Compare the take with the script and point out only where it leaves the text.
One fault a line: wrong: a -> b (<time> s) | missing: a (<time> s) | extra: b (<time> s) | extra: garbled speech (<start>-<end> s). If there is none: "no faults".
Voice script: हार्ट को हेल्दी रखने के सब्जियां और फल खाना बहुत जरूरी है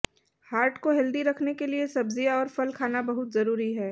extra: लिए (1.7 s)